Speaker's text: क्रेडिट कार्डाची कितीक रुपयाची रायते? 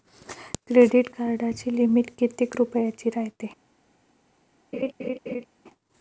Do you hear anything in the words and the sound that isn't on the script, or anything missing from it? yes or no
yes